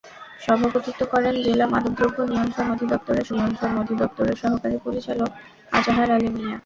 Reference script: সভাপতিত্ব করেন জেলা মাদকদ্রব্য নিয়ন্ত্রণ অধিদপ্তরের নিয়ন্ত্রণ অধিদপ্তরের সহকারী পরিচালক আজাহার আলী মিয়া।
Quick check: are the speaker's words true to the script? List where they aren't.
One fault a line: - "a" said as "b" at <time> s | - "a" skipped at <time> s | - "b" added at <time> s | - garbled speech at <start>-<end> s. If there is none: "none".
none